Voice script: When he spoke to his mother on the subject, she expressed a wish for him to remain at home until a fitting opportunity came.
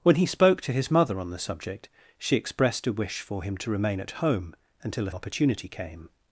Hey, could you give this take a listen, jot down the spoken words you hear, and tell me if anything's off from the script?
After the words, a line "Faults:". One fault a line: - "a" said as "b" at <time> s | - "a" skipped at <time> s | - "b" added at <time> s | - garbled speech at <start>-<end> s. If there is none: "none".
When he spoke to his mother on the subject, she expressed a wish for him to remain at home until a opportunity came.
Faults:
- "fitting" skipped at 5.1 s